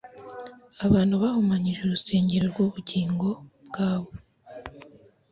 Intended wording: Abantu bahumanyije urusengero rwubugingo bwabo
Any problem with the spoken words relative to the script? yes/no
no